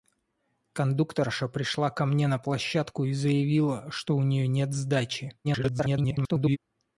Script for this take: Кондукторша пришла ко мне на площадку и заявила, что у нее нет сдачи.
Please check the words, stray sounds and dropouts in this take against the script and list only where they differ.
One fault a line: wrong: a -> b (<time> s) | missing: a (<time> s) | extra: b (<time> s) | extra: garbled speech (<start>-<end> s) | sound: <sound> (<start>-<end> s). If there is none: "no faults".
extra: garbled speech (5.4-6.6 s)